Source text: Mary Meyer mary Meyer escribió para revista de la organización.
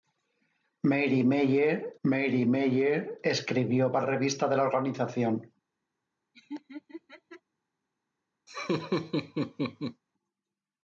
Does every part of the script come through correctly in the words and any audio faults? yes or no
no